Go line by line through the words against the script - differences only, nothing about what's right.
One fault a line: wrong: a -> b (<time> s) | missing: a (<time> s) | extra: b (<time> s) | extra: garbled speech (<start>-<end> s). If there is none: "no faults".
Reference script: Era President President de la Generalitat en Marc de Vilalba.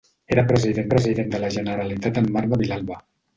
no faults